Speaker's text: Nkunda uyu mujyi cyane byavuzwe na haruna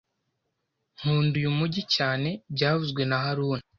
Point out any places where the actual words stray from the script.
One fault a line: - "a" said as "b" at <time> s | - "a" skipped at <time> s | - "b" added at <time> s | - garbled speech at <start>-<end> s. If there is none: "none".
none